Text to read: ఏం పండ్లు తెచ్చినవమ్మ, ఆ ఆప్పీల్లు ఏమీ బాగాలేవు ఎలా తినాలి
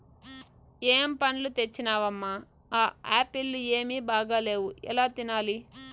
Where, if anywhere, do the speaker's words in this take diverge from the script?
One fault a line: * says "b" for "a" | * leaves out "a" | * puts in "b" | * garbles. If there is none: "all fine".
all fine